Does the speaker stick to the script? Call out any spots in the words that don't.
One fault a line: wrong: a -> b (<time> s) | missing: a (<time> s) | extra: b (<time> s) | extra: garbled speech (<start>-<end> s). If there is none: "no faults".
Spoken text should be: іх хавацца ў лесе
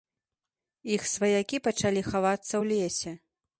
extra: сваякі пачалі (1.1 s)